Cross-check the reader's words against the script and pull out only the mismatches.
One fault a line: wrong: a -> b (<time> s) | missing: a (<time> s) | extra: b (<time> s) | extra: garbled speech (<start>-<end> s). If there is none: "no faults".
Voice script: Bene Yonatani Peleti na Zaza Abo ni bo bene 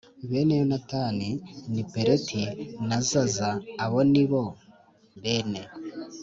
extra: ni (1.7 s)